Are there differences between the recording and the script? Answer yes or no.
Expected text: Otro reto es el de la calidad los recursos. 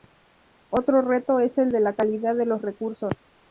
yes